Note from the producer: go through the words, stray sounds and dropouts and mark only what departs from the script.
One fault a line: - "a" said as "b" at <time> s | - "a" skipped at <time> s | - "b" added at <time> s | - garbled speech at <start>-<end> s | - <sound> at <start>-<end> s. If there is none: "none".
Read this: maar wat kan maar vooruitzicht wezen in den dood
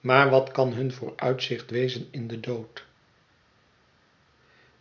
- "maar" said as "hun" at 0.7 s